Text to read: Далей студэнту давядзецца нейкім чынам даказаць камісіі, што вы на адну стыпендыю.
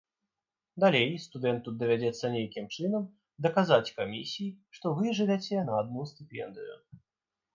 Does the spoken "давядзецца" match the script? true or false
true